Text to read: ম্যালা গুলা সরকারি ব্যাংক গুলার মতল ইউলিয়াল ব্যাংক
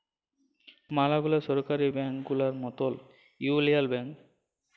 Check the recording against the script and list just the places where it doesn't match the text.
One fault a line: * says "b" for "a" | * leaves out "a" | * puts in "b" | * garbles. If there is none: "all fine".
all fine